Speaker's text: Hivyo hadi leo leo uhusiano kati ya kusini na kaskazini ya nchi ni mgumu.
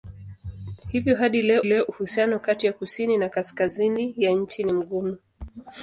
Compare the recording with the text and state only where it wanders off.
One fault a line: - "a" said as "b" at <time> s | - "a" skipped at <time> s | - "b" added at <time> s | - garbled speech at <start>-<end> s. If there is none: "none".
none